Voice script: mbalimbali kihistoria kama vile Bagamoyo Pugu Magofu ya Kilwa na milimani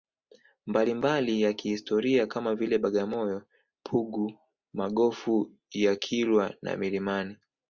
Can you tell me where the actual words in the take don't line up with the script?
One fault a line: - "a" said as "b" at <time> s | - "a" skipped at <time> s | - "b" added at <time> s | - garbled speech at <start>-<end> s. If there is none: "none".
- "ya" added at 1.4 s